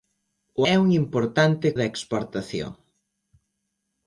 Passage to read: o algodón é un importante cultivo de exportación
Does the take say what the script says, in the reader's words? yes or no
no